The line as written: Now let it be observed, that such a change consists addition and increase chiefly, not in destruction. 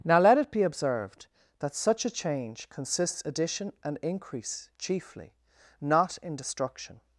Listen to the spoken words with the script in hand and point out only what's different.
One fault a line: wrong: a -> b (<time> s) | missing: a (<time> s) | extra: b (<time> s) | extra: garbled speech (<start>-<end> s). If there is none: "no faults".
no faults